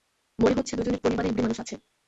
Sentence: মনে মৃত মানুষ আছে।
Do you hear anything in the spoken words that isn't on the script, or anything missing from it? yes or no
yes